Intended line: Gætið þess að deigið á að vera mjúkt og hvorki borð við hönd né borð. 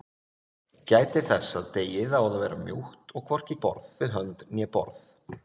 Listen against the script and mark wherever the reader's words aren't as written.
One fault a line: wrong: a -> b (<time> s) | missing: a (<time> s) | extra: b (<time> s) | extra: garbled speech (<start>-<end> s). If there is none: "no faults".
no faults